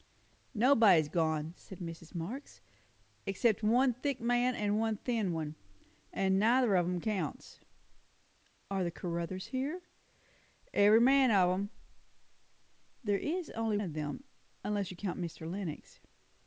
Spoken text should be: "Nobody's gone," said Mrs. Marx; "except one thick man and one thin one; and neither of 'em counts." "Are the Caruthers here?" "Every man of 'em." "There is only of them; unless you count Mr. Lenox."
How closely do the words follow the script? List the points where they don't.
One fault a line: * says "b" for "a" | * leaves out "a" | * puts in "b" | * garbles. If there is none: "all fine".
all fine